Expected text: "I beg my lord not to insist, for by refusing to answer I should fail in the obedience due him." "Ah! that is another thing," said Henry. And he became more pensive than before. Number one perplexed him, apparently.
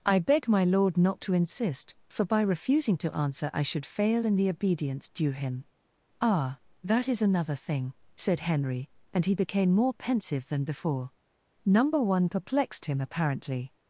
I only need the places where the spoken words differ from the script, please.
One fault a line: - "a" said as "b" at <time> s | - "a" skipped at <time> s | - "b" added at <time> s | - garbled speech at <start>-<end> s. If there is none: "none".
none